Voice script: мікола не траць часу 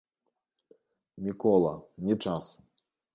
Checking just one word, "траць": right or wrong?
wrong